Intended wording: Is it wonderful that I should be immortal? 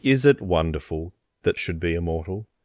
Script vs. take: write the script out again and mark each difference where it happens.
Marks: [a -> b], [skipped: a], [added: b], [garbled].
Is it wonderful that [skipped: I] should be immortal?